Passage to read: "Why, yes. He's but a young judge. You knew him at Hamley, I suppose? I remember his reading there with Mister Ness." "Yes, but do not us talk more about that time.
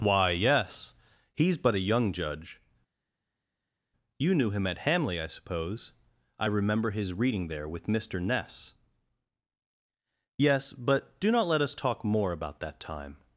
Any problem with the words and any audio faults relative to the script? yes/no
yes